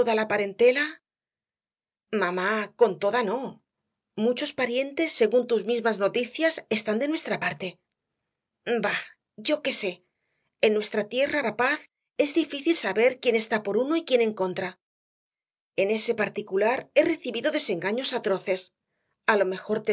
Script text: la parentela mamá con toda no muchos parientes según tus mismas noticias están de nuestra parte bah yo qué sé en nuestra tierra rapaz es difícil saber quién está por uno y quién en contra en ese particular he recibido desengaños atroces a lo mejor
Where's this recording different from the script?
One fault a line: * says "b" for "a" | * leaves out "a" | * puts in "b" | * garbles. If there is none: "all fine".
all fine